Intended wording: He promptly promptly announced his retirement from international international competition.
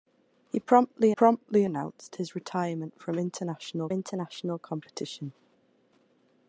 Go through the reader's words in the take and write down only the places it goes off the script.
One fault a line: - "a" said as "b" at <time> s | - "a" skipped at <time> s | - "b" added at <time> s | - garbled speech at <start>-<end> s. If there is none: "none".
none